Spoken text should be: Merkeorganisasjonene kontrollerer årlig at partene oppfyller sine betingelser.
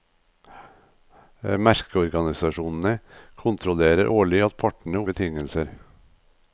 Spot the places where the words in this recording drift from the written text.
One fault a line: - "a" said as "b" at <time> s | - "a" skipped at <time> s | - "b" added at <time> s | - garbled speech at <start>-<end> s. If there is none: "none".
- "oppfyller sine" skipped at 5.0 s